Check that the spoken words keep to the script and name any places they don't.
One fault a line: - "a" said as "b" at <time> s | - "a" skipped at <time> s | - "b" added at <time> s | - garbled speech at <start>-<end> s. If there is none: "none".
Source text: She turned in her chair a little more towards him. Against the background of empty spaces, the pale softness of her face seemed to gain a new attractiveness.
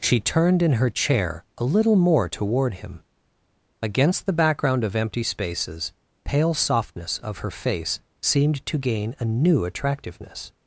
- "towards" said as "toward" at 2.3 s
- "the" skipped at 5.9 s